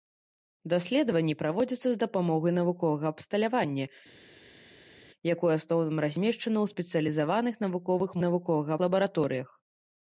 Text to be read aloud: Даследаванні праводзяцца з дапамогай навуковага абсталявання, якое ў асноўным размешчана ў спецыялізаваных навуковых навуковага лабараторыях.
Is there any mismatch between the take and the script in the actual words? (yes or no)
no